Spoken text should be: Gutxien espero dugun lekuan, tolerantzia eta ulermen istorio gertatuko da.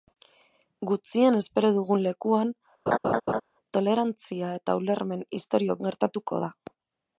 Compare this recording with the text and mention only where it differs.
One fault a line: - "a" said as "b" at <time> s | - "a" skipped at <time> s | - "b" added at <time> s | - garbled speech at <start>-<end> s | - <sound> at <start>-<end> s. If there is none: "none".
- laugh at 2.9-3.4 s